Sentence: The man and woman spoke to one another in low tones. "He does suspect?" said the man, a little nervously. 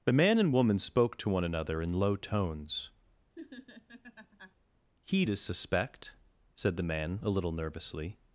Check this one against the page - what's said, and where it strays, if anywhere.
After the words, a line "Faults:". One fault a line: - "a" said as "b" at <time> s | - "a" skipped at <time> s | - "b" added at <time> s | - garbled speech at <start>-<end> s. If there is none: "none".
The man and woman spoke to one another in low tones. "He does suspect?" said the man, a little nervously.
Faults:
none